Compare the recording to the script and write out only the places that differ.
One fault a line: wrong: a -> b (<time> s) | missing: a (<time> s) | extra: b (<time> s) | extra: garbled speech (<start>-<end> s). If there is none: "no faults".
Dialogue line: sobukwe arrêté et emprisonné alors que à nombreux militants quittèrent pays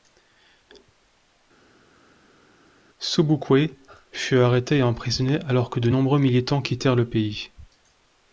extra: fut (4.1 s)
wrong: à -> de (5.8 s)
extra: le (7.0 s)